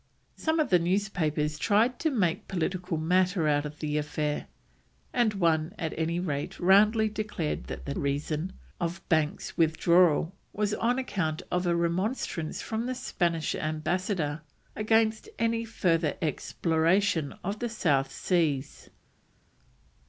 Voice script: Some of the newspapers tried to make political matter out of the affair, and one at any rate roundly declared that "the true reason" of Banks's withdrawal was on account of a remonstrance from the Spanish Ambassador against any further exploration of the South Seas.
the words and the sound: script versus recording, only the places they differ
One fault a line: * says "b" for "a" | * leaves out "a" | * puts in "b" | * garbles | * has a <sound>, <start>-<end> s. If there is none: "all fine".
* leaves out "true"